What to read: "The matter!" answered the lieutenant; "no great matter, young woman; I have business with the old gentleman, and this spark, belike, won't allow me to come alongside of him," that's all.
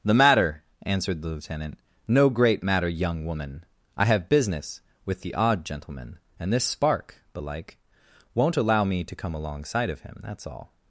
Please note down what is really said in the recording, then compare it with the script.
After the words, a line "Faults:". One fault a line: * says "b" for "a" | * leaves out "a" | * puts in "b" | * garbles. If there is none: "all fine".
"The matter!" answered the lieutenant; "no great matter, young woman; I have business with the odd gentleman, and this spark, belike, won't allow me to come alongside of him," that's all.
Faults:
* says "odd" for "old"